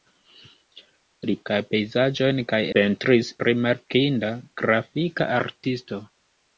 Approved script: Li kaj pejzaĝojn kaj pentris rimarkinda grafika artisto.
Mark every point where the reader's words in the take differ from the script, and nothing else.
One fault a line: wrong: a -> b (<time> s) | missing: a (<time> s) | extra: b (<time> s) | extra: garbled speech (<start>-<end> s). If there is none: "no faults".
no faults